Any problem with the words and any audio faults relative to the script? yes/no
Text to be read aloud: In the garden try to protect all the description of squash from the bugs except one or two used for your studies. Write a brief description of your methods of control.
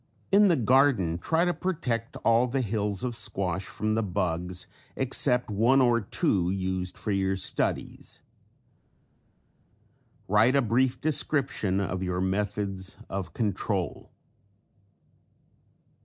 yes